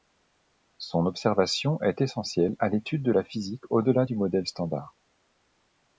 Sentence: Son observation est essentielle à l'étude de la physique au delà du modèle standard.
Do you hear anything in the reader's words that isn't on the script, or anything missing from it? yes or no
no